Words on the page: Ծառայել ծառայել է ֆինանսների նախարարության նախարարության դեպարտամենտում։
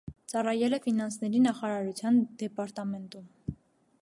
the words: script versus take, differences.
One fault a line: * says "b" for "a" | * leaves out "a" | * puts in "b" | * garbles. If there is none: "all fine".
* leaves out "ծառայել"
* leaves out "նախարարության"